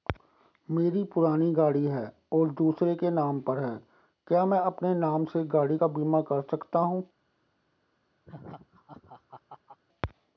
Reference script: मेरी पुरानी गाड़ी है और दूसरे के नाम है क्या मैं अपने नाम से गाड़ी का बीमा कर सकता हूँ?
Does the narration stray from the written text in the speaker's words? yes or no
yes